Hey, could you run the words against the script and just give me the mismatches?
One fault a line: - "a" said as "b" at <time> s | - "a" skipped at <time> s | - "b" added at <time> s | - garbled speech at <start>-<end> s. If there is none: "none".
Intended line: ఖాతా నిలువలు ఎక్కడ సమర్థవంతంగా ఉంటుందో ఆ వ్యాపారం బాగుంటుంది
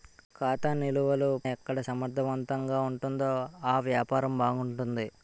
none